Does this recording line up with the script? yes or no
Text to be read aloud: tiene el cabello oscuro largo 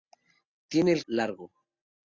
no